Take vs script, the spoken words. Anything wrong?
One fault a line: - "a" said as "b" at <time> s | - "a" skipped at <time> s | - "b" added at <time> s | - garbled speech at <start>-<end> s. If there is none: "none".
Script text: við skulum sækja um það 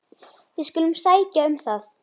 none